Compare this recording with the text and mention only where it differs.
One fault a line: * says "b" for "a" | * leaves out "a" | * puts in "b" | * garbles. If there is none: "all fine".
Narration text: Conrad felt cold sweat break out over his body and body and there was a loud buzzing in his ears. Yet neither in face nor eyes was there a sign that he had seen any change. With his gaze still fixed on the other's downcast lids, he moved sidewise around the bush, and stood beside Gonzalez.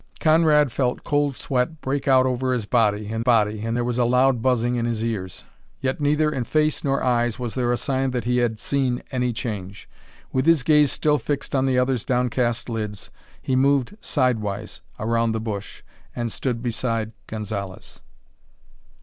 all fine